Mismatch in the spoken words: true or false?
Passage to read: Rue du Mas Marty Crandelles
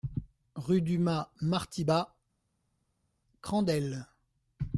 true